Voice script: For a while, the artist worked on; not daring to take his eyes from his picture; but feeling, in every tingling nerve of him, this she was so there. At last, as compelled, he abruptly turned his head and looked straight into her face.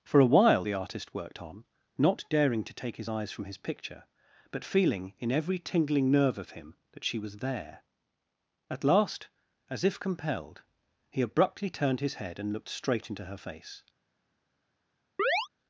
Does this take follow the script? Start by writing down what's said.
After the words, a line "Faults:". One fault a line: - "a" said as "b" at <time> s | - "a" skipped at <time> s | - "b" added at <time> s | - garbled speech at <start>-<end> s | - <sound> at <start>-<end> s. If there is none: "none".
For a while, the artist worked on; not daring to take his eyes from his picture; but feeling, in every tingling nerve of him, that she was there. At last, as if compelled, he abruptly turned his head and looked straight into her face.
Faults:
- "this" said as "that" at 6.9 s
- "so" skipped at 7.4 s
- "if" added at 9.8 s
- chirp at 15.2-15.5 s